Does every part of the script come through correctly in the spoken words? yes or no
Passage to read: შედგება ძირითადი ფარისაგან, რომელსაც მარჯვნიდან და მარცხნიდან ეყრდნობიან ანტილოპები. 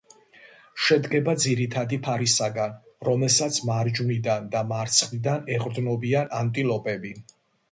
yes